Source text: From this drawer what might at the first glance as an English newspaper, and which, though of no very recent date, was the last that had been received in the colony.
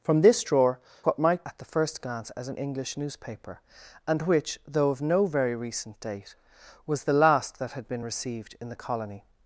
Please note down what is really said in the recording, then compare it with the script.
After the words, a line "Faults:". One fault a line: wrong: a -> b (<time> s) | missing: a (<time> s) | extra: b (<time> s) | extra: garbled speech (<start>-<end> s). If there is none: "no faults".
From this drawer what might at the first glance as an English newspaper, and which, though of no very recent date, was the last that had been received in the colony.
Faults:
no faults